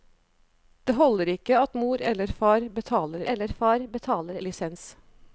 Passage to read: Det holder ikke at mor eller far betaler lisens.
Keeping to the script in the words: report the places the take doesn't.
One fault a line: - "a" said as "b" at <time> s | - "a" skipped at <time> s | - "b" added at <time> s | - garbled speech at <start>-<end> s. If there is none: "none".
- "eller far betaler" added at 3.3 s